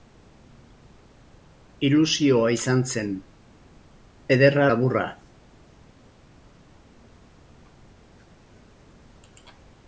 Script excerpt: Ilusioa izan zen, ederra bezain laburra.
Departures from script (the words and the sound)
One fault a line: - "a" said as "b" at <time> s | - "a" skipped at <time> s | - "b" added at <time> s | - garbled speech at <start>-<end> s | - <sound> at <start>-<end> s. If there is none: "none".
- "bezain" skipped at 4.7 s